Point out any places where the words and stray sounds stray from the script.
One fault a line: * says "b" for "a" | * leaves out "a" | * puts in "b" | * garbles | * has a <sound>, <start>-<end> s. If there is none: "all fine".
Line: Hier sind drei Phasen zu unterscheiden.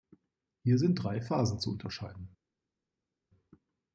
all fine